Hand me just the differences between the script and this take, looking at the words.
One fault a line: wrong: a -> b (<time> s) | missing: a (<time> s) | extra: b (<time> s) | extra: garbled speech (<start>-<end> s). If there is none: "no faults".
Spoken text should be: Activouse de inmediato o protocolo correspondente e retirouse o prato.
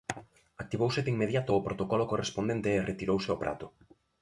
no faults